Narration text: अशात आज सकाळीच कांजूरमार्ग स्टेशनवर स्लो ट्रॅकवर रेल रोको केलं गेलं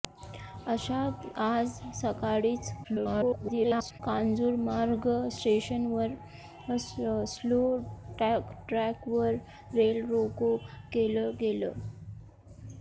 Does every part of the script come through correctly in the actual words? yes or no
no